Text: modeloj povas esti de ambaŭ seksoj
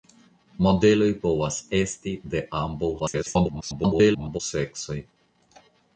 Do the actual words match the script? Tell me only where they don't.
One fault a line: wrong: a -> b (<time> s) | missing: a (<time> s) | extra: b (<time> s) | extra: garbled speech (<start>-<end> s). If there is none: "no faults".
extra: garbled speech (3.0-4.4 s)